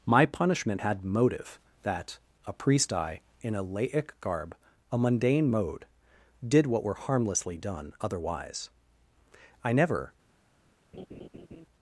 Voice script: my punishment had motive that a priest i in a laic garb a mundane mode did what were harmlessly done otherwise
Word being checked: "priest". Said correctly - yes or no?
yes